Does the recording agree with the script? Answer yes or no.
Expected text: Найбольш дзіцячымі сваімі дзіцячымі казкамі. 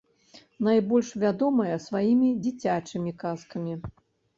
no